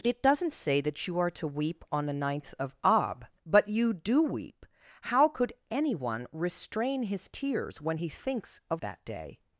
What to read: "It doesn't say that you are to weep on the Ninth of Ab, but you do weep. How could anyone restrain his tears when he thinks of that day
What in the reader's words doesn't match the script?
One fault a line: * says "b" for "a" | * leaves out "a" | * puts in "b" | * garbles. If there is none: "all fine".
all fine